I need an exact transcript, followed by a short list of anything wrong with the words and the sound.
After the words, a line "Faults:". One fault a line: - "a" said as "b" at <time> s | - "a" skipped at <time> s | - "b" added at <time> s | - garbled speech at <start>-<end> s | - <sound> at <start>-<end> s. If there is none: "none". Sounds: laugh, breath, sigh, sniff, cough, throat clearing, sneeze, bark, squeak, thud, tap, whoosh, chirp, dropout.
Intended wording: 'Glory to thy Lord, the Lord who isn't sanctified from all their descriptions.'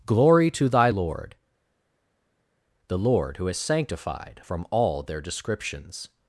'Glory to thy Lord, the Lord who is sanctified from all their descriptions.'
Faults:
- "isn't" said as "is" at 3.5 s